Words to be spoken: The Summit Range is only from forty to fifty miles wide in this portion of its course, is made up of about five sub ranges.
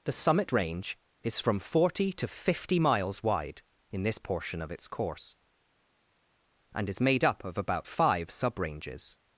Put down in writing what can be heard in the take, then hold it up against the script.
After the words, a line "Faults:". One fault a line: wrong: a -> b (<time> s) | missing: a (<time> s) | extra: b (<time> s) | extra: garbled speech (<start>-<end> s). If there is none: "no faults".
The Summit Range is from forty to fifty miles wide in this portion of its course, and is made up of about five sub ranges.
Faults:
missing: only (1.4 s)
extra: and (6.7 s)